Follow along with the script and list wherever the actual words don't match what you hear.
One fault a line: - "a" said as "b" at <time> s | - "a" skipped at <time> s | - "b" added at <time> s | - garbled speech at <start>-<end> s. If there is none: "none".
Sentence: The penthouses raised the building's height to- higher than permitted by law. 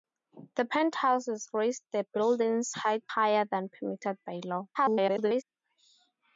- "to" skipped at 3.0 s
- garbled speech at 4.7-5.4 s